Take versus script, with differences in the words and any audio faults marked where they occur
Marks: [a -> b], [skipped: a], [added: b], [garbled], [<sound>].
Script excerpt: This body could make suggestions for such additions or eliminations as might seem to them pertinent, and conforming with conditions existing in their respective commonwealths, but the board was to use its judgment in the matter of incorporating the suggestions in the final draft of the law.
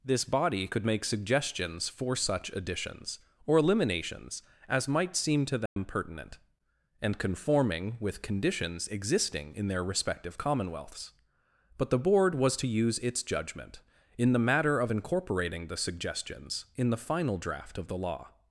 This body could make suggestions for such additions or eliminations as might seem to them [dropout] pertinent, and conforming with conditions existing in their respective commonwealths, but the board was to use its judgment in the matter of incorporating the suggestions in the final draft of the law.